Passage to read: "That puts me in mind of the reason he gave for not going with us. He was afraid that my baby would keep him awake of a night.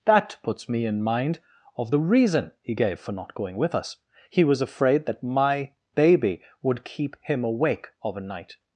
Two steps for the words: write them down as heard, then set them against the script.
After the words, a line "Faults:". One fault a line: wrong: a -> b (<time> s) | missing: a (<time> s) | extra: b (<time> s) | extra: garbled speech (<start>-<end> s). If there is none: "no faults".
"That puts me in mind of the reason he gave for not going with us. He was afraid that my baby would keep him awake of a night.
Faults:
no faults